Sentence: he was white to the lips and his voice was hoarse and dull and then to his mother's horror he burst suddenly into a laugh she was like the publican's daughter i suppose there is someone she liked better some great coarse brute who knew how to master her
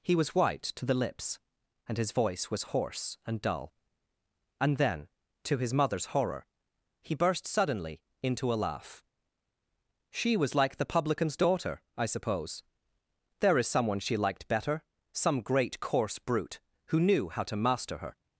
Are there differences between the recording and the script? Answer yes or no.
no